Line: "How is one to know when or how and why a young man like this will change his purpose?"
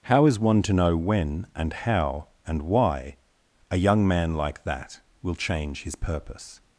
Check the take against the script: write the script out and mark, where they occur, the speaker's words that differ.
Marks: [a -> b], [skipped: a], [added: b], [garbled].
"How is one to know when [or -> and] how and why a young man like [this -> that] will change his purpose?"